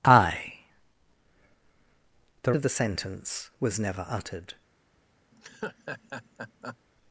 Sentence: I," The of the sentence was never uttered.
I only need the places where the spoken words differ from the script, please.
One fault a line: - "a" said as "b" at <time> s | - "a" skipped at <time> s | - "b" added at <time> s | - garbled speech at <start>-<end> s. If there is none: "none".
none